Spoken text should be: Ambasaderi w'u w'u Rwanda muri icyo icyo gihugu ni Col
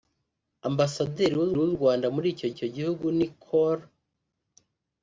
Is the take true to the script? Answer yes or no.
yes